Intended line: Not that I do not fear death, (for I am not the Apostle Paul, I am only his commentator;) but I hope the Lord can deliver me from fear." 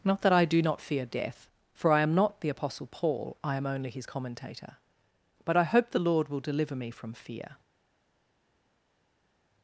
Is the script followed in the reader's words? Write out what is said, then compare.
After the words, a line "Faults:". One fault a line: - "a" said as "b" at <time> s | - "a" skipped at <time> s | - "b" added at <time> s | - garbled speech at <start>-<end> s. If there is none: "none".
Not that I do not fear death, (for I am not the Apostle Paul, I am only his commentator;) but I hope the Lord will deliver me from fear."
Faults:
- "can" said as "will" at 6.3 s